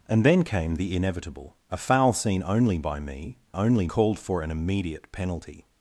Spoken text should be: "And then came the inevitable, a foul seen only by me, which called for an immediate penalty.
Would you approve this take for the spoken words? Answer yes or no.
no